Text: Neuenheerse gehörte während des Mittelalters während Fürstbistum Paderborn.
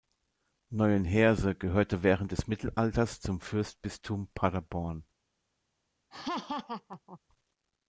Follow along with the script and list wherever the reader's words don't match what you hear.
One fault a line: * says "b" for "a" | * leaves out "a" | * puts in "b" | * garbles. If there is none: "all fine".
* says "zum" for "während"